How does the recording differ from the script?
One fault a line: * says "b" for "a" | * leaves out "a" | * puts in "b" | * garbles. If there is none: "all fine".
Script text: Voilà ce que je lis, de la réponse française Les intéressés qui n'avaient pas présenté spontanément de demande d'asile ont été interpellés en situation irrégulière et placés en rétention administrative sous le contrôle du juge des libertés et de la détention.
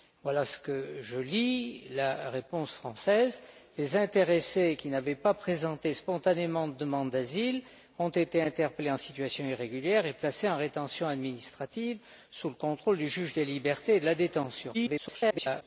* garbles